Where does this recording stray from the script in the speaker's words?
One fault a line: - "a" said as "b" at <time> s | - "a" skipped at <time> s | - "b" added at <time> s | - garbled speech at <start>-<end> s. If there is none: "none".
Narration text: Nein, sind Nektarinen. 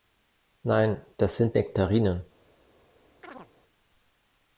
- "das" added at 1.2 s